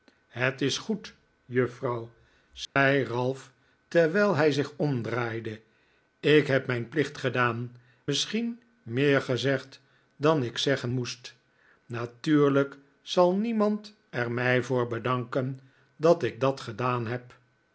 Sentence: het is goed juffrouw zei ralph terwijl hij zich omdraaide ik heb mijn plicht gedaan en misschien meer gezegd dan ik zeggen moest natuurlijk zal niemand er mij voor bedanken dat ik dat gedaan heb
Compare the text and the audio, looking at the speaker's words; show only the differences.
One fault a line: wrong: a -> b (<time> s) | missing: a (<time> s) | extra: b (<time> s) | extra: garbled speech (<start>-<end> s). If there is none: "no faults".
missing: en (7.8 s)